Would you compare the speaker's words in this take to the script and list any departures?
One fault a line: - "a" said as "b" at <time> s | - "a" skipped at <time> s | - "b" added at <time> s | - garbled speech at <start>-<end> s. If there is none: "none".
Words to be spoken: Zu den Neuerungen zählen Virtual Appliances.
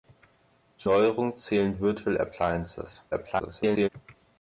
- "den" skipped at 0.9 s
- garbled speech at 3.1-3.9 s